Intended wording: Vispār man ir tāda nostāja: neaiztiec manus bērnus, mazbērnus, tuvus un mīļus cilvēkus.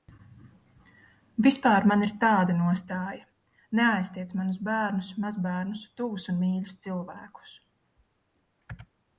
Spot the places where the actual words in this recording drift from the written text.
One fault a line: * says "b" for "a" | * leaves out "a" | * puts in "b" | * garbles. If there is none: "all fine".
all fine